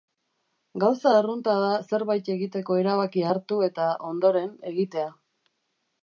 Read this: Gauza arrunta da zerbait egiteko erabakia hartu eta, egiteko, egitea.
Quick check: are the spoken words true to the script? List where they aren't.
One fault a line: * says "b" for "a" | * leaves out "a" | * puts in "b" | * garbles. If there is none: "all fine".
* says "ondoren" for "egiteko"